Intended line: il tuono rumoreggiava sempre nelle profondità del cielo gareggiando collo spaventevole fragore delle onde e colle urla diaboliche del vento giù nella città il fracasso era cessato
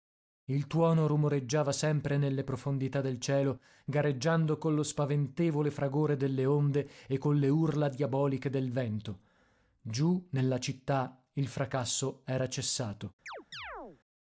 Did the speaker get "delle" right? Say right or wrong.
right